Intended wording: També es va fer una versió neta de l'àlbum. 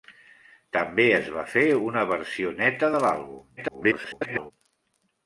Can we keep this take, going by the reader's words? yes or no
no